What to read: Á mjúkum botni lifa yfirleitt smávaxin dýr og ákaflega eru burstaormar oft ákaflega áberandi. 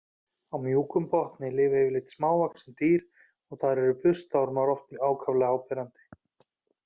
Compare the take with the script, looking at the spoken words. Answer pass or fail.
fail